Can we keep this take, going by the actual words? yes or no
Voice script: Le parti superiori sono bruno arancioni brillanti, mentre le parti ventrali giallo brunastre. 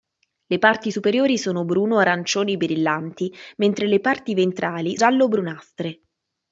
yes